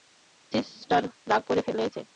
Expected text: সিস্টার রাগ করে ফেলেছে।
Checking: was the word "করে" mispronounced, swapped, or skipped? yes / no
no